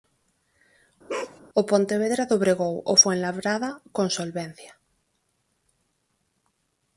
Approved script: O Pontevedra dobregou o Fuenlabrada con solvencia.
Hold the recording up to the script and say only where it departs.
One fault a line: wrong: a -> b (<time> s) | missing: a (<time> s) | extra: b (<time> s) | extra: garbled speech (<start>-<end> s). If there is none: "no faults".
no faults